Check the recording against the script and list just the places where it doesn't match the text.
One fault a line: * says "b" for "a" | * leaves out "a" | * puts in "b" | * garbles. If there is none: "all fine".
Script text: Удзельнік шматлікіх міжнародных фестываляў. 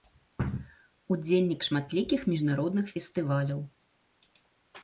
all fine